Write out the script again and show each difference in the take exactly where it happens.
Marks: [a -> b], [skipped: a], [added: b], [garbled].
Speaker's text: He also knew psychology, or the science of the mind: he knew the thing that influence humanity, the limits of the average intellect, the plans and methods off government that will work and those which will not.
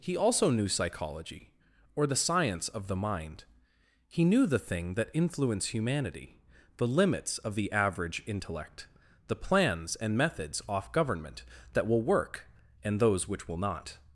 He also knew psychology, or the science of the mind: he knew the thing that influence humanity, the limits of the average intellect, the plans and methods off government that will work and those which will not.